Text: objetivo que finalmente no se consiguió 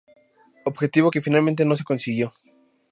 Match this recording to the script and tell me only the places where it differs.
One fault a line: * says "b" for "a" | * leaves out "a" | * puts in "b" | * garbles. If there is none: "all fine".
all fine